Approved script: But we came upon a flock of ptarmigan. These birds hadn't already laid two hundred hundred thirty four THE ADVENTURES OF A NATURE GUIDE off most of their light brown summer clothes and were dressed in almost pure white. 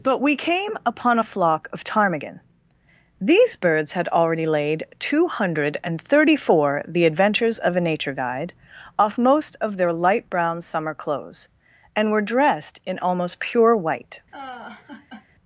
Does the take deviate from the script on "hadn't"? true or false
true